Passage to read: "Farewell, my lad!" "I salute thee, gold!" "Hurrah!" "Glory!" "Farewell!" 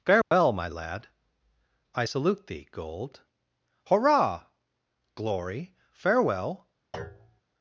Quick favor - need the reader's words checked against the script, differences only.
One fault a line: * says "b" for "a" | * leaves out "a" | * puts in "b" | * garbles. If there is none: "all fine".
all fine